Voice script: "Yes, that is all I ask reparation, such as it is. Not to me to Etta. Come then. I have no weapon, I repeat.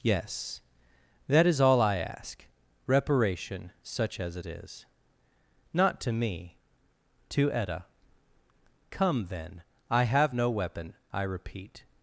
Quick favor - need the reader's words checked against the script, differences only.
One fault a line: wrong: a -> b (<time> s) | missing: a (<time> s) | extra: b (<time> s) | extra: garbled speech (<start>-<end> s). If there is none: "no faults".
no faults